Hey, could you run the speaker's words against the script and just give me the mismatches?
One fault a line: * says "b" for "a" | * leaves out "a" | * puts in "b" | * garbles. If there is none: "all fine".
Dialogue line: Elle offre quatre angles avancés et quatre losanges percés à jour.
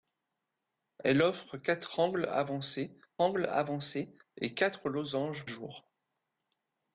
* puts in "angles avancés"
* leaves out "percés à"